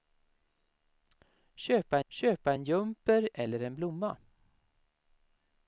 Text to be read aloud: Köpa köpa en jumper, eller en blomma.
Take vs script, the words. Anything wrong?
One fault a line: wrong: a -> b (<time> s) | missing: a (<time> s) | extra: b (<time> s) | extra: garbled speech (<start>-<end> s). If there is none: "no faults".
no faults